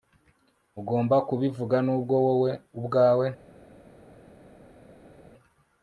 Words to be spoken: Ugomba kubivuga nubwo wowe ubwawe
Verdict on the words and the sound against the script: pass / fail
pass